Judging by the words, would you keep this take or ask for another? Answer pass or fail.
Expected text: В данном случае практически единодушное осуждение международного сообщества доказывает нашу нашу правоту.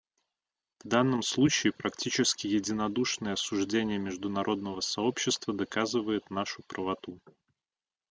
fail